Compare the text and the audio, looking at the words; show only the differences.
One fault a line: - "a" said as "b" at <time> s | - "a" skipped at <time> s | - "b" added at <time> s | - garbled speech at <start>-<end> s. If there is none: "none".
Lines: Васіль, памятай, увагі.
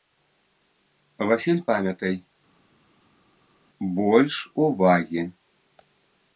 - "больш" added at 4.0 s